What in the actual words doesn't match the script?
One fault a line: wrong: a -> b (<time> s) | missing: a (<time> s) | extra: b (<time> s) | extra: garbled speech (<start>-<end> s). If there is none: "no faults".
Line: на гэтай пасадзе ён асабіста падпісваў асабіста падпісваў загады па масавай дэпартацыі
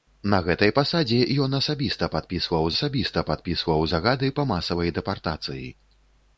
no faults